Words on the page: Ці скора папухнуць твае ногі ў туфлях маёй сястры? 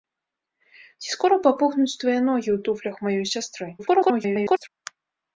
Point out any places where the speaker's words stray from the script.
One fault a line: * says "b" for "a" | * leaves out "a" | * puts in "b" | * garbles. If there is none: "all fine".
* garbles